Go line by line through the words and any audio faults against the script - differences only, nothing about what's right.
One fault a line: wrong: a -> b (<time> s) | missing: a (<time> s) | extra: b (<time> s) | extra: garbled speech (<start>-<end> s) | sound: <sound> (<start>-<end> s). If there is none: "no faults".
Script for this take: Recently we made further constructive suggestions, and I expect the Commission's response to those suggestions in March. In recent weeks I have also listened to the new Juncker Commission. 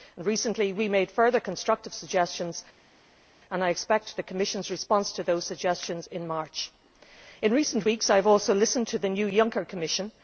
no faults